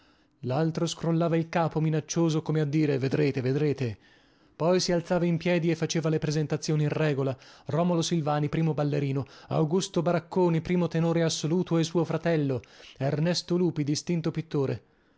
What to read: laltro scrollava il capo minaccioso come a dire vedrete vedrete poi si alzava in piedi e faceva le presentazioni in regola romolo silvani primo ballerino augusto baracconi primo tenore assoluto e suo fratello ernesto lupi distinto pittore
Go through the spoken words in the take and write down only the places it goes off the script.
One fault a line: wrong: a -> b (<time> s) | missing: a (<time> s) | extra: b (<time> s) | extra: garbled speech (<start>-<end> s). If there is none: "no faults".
no faults